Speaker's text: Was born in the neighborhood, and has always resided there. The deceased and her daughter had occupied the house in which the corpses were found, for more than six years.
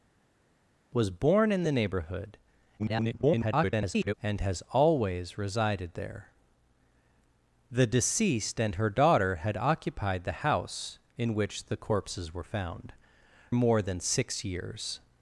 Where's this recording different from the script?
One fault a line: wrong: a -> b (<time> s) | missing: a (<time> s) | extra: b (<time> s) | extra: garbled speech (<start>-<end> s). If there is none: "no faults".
extra: garbled speech (2.8-4.1 s)
missing: for (12.9 s)